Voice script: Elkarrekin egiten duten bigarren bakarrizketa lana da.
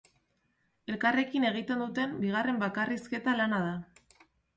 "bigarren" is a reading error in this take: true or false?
false